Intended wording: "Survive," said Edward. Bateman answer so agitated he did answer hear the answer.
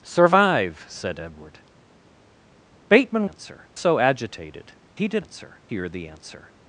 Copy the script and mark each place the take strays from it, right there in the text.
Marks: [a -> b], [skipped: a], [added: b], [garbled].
"Survive," said Edward. Bateman answer so agitated he did answer hear the answer.